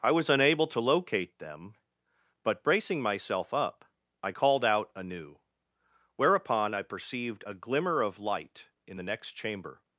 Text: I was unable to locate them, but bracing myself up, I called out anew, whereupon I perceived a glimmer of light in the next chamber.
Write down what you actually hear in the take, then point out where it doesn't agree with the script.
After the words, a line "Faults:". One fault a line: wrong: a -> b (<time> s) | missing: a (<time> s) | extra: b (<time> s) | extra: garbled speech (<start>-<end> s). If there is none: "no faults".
I was unable to locate them, but bracing myself up, I called out anew, whereupon I perceived a glimmer of light in the next chamber.
Faults:
no faults